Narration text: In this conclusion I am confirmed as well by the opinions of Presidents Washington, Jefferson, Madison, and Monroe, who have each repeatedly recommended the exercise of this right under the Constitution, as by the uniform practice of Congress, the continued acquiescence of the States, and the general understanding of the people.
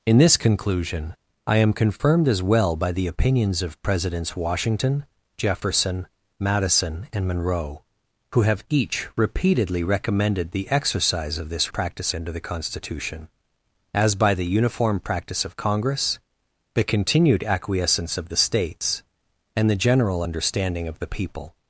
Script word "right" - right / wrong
wrong